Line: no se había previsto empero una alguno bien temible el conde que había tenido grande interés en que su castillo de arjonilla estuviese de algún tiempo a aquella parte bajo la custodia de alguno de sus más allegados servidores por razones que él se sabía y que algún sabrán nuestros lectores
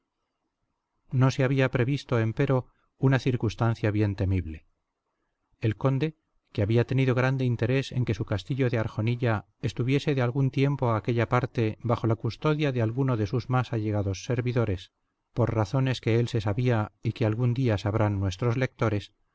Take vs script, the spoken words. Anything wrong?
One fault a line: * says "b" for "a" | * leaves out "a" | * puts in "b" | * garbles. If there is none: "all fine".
* says "circunstancia" for "alguno"
* puts in "día"